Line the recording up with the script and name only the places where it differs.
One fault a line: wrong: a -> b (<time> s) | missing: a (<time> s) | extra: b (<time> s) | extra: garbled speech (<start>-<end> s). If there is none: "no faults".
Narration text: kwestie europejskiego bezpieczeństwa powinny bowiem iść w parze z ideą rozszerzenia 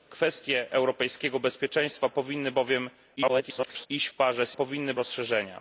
extra: garbled speech (3.2-3.9 s)
wrong: ideą -> powinny (4.5 s)